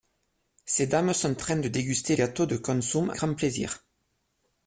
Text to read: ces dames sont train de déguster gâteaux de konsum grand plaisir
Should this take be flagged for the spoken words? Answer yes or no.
no